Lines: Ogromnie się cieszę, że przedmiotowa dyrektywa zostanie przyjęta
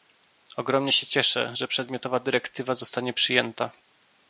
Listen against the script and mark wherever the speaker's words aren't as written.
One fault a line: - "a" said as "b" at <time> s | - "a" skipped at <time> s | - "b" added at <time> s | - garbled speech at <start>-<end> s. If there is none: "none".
none